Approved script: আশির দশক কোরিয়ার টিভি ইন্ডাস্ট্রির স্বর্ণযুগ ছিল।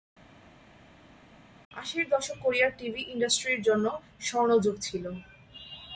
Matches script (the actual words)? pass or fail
fail